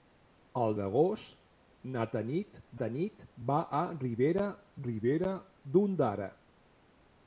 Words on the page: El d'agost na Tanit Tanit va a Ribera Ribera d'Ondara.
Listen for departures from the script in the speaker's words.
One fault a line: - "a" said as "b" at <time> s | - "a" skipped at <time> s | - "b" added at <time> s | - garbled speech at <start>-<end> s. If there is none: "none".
none